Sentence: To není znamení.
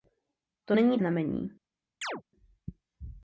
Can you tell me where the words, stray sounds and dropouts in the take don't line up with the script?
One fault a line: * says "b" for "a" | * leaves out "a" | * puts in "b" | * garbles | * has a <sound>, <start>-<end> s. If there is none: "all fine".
* has a chirp, 2.0-2.2 s